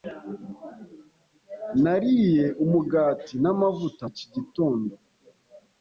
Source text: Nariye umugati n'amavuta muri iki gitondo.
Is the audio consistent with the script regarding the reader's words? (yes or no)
no